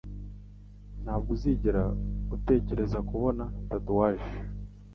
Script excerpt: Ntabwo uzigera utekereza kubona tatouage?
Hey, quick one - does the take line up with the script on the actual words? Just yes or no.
yes